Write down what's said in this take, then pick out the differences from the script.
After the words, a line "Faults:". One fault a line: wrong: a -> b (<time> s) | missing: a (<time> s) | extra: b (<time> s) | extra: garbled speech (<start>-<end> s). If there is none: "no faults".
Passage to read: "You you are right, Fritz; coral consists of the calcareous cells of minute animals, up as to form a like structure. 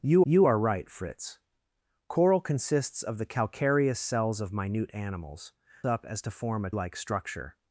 "You you are right, Fritz; coral consists of the calcareous cells of minute animals, up as to form a like structure.
Faults:
no faults